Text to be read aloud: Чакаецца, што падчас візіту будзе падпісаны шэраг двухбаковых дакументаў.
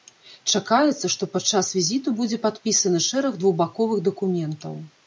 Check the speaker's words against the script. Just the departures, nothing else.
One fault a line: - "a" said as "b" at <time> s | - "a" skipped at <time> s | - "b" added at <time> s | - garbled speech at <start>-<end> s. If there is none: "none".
none